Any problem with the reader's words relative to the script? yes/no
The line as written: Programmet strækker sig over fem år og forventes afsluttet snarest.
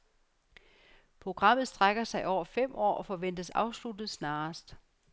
no